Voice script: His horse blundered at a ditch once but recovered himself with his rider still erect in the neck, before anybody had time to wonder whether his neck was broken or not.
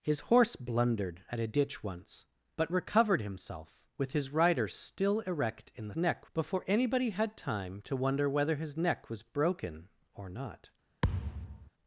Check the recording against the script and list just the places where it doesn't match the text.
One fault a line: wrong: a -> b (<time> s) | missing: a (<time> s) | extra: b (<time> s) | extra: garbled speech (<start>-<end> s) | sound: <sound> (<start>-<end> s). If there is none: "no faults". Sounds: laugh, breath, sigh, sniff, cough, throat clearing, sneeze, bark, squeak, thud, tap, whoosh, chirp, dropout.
sound: thud (11.0-11.7 s)